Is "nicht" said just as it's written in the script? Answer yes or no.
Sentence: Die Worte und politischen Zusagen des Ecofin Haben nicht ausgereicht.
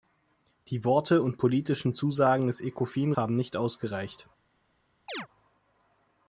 yes